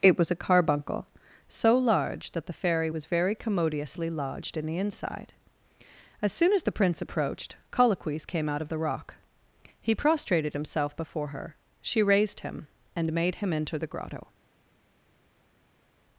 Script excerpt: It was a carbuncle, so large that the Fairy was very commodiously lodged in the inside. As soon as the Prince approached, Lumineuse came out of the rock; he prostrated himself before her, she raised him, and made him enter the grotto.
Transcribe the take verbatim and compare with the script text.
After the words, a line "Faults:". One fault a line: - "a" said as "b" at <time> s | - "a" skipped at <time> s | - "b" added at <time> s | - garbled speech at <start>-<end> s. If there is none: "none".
It was a carbuncle, so large that the Fairy was very commodiously lodged in the inside. As soon as the Prince approached, Colloquies came out of the rock; he prostrated himself before her, she raised him, and made him enter the grotto.
Faults:
- "Lumineuse" said as "Colloquies" at 7.7 s